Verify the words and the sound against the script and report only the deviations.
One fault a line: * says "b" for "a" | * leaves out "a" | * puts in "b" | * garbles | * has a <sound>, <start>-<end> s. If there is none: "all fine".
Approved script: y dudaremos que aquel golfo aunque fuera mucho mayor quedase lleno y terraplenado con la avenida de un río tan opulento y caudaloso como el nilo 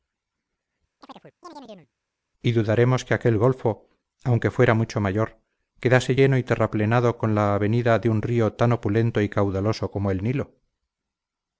* has a chirp, 1.0-1.9 s